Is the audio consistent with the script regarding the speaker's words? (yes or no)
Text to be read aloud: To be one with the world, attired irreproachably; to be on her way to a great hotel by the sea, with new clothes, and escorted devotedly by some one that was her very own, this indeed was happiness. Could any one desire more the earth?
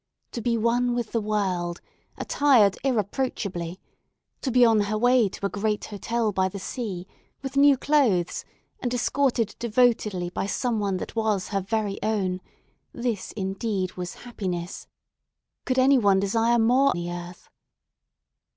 yes